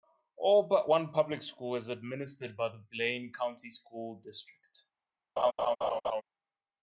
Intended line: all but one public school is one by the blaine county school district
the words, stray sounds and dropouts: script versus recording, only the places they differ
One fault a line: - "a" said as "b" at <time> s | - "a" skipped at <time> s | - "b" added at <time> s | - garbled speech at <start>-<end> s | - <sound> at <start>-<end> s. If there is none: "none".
- "one" said as "administered" at 1.9 s
- laugh at 5.4-6.2 s